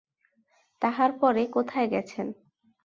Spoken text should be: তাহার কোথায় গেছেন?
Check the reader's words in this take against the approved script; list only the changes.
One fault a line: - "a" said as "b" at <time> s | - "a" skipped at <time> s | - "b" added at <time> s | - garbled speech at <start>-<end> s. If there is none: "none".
- "পরে" added at 1.2 s